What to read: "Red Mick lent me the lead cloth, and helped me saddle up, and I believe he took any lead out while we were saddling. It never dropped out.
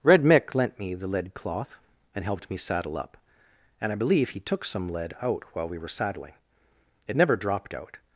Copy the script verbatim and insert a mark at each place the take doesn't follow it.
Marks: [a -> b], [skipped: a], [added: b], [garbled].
"Red Mick lent me the lead cloth, and helped me saddle up, and I believe he took [any -> some] lead out while we were saddling. It never dropped out.